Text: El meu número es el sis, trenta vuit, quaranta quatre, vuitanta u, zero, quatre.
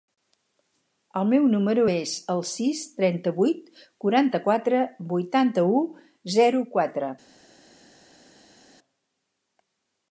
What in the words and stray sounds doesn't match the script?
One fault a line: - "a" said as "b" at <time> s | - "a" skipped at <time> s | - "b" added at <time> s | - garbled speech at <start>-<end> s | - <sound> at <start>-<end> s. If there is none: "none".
none